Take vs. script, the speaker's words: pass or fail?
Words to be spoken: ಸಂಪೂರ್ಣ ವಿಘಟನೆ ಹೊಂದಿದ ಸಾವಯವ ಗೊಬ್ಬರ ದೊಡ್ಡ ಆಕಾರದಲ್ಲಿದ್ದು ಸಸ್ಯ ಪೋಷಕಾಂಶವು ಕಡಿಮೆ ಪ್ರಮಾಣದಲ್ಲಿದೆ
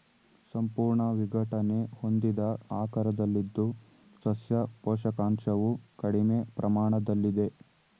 fail